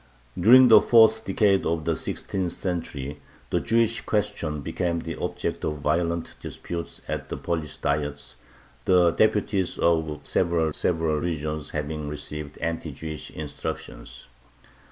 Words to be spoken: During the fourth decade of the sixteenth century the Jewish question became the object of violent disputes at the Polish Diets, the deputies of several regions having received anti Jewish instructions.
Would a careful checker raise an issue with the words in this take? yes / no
yes